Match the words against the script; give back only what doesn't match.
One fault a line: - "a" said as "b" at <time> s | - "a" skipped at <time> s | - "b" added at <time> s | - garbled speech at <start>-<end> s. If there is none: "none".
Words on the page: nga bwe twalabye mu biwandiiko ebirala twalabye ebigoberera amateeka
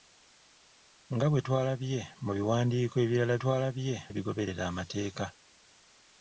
none